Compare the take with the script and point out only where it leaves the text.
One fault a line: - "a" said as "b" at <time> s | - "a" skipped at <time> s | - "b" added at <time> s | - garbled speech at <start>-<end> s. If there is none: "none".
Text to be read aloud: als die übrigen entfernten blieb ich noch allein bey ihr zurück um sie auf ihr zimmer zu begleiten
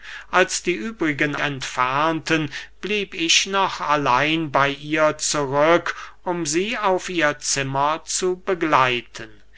none